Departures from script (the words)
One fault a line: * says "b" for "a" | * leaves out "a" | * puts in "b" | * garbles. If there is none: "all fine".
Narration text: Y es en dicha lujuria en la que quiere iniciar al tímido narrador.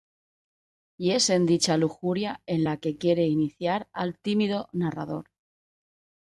all fine